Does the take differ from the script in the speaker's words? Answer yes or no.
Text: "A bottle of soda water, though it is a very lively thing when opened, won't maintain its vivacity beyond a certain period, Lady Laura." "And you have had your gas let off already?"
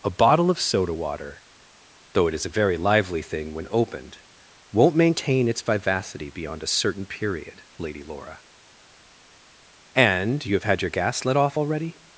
no